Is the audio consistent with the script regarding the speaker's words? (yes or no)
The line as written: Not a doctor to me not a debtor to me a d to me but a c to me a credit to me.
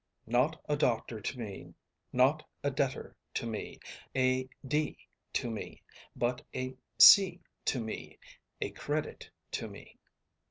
yes